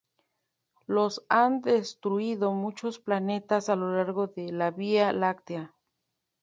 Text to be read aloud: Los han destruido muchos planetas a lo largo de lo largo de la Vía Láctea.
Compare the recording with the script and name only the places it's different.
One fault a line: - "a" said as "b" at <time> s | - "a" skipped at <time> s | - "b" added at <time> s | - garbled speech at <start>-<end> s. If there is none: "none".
- "lo largo de" skipped at 4.5 s